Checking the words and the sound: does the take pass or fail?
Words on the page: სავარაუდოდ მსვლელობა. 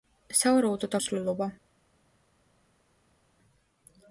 pass